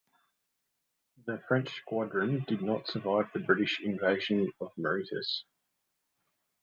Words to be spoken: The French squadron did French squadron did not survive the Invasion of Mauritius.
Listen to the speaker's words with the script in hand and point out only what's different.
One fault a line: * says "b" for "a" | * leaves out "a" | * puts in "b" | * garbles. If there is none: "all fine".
* leaves out "French squadron did"
* puts in "British"